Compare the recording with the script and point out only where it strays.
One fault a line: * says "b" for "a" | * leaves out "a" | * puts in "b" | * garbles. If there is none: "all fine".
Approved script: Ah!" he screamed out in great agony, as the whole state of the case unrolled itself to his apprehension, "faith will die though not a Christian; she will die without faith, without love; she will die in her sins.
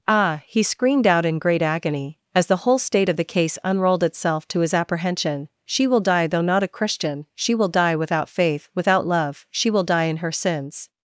* says "she" for "faith"